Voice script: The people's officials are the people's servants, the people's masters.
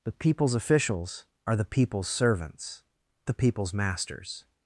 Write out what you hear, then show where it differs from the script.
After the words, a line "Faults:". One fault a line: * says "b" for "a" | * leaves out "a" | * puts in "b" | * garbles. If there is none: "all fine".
The people's officials are the people's servants, the people's masters.
Faults:
all fine